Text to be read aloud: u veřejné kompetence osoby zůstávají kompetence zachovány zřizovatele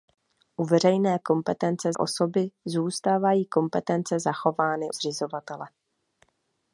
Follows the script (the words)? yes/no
yes